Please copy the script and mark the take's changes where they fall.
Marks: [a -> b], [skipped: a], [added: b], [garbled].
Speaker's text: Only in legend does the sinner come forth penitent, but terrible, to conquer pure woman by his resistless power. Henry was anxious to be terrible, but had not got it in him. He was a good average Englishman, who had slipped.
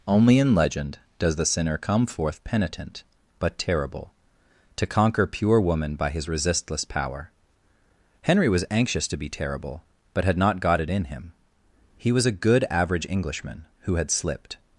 Only in legend does the sinner come forth penitent, but terrible, to conquer pure woman by his resistless power. Henry was anxious to be terrible, but had not got it in him. He was a good average Englishman, who had slipped.